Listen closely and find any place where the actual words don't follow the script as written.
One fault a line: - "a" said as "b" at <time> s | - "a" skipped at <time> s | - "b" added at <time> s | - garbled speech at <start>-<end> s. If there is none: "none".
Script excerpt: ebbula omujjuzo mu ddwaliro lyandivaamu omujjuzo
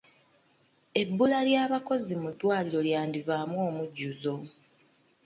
- "omujjuzo" said as "ly'abakozi" at 1.5 s